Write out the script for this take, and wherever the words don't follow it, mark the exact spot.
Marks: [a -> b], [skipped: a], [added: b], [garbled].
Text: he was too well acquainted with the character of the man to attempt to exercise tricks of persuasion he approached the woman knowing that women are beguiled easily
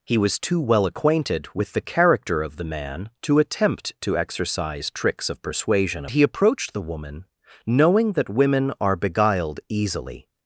he was too well acquainted with the character of the man to attempt to exercise tricks of persuasion he approached the woman knowing that women are beguiled easily